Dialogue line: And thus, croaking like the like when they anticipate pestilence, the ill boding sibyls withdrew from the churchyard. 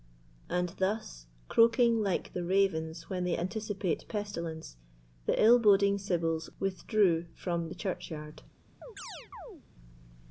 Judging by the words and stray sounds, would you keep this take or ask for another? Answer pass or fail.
fail